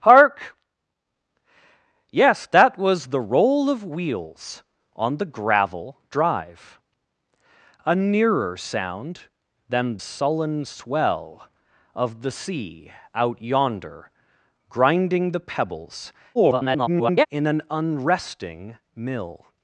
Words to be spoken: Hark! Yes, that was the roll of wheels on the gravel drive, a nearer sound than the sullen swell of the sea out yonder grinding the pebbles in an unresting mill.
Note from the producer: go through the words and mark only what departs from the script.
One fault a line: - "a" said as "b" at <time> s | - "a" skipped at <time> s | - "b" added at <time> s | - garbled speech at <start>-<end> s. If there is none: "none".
- "the" skipped at 10.0 s
- garbled speech at 16.3-17.3 s